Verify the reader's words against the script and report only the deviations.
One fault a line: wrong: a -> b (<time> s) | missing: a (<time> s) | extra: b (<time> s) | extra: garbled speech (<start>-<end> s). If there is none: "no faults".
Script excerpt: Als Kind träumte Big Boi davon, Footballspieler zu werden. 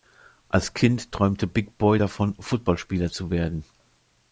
no faults